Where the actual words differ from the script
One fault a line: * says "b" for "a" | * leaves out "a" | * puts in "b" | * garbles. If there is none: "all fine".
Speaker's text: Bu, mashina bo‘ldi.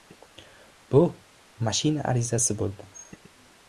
* puts in "arizasi"